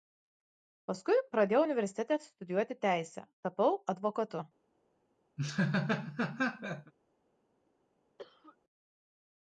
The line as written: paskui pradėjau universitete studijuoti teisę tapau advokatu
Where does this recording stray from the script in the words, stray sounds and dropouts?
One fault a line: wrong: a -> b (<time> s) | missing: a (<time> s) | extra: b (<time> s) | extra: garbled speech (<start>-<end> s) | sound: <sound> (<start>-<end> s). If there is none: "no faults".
sound: laugh (5.4-6.9 s)
sound: cough (8.2-8.6 s)